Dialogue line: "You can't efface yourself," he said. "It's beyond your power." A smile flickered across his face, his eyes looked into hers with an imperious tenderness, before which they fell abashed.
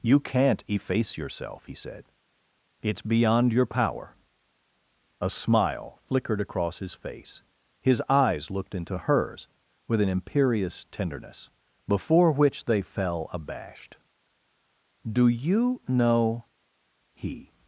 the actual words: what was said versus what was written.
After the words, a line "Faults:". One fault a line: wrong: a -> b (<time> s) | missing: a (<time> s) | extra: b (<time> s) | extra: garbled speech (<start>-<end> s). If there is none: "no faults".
"You can't efface yourself," he said. "It's beyond your power." A smile flickered across his face, his eyes looked into hers with an imperious tenderness, before which they fell abashed. "Do you know," he
Faults:
extra: Do you know he (15.0 s)